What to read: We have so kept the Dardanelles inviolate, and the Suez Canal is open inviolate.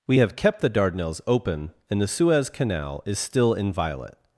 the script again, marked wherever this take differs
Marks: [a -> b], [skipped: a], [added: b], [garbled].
We have [skipped: so] kept the Dardanelles [inviolate, -> open] and the Suez Canal is [open -> still] inviolate.